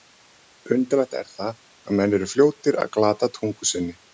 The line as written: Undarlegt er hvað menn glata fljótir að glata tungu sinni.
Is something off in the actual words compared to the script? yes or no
yes